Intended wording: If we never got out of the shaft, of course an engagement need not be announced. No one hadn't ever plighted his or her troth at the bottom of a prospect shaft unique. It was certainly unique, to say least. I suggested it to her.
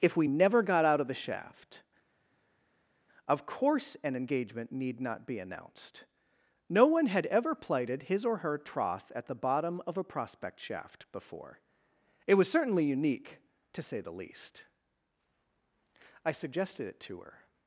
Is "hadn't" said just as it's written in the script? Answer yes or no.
no